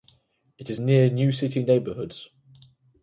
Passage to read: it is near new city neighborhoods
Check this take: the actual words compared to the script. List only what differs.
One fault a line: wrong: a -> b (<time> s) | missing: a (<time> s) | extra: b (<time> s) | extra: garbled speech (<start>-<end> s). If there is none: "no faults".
no faults